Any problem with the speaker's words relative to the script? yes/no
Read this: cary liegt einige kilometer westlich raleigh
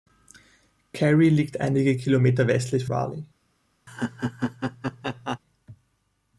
no